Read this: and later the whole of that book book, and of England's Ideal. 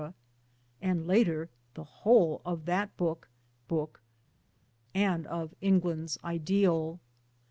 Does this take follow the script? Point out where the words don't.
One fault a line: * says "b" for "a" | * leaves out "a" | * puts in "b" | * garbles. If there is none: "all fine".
all fine